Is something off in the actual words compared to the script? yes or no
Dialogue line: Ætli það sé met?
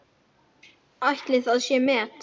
no